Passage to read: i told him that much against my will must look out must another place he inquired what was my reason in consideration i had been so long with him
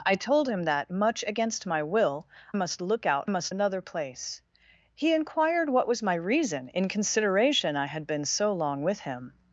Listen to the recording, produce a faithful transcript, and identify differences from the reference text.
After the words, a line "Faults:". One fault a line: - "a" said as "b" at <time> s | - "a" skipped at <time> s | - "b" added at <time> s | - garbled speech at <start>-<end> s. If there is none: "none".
i told him that much against my will must look out must another place he inquired what was my reason in consideration i had been so long with him
Faults:
none